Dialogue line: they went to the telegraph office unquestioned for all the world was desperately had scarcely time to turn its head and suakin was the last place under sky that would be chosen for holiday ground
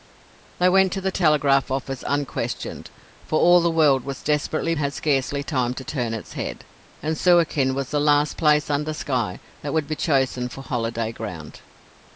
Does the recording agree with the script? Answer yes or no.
yes